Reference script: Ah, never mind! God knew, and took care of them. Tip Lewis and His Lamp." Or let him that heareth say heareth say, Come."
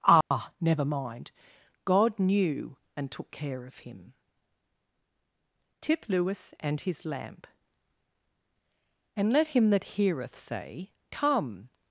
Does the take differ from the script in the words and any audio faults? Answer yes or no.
yes